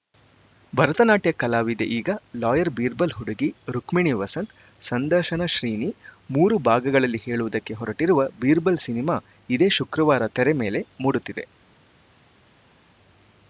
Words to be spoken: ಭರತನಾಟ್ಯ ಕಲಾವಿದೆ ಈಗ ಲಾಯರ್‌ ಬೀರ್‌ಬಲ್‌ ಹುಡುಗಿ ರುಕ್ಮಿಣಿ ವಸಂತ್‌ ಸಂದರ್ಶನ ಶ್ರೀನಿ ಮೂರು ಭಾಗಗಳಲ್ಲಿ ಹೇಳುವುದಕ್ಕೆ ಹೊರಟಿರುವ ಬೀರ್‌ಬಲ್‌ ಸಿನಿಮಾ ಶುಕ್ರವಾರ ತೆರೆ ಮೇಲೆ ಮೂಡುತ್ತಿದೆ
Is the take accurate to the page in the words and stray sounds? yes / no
no